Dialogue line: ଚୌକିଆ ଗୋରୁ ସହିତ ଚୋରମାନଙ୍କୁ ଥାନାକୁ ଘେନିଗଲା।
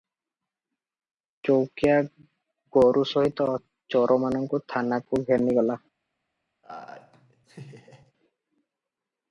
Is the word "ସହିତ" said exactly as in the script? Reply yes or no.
yes